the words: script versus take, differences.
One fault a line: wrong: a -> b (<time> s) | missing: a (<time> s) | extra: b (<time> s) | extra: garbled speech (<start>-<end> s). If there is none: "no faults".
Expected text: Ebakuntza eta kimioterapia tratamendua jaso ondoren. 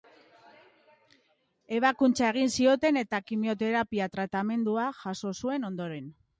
extra: egin zioten (2.3 s)
extra: zuen (5.4 s)